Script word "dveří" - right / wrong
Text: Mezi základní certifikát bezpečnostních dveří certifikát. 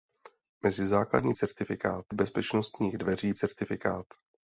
right